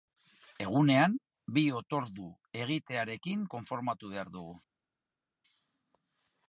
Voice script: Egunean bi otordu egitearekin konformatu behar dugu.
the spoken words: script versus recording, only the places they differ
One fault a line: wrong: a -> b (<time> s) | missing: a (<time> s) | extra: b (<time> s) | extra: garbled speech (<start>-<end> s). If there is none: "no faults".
no faults